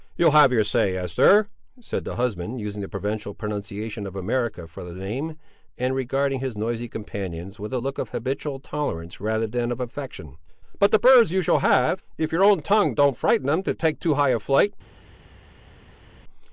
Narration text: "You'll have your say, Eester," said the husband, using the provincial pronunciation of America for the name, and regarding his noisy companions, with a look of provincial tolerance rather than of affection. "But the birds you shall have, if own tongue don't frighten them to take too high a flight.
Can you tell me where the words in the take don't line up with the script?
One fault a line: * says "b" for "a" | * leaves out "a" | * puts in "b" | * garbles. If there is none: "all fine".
* says "habitual" for "provincial"
* puts in "your"